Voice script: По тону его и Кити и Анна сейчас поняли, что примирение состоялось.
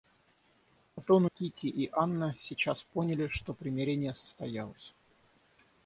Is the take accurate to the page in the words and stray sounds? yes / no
no